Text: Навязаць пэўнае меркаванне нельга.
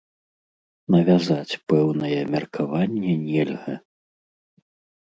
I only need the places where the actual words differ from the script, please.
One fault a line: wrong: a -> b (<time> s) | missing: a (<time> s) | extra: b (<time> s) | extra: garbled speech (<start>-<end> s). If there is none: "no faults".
no faults